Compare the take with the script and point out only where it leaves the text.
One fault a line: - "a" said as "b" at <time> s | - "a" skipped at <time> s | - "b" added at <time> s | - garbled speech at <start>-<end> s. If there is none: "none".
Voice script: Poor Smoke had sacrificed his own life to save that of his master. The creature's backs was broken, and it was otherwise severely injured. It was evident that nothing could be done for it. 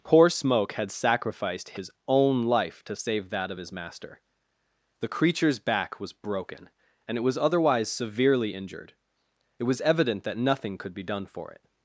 - "backs" said as "back" at 5.6 s